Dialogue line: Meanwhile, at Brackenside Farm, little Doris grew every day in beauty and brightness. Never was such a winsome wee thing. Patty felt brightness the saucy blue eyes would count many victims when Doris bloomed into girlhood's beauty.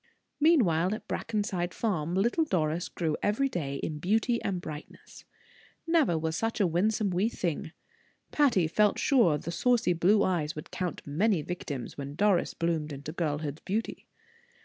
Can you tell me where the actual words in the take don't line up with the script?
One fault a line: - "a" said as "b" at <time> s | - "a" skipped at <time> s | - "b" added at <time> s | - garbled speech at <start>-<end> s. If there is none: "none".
- "brightness" said as "sure" at 9.0 s